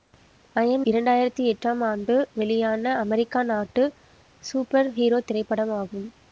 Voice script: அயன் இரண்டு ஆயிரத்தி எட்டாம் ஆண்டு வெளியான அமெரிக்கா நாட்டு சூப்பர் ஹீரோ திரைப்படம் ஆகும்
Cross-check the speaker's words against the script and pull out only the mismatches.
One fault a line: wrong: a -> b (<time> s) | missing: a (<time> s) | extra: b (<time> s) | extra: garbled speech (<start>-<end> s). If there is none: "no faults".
no faults